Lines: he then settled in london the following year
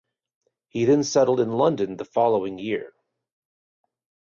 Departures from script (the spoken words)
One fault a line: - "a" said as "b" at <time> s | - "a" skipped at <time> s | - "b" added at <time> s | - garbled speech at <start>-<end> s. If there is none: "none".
none